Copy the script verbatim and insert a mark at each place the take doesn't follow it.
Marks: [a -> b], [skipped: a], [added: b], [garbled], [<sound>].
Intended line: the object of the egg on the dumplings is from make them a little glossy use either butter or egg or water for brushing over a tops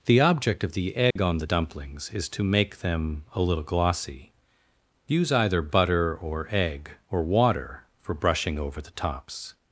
the object of the egg [dropout] on the dumplings is [from -> to] make them a little glossy use either butter or egg or water for brushing over [a -> the] tops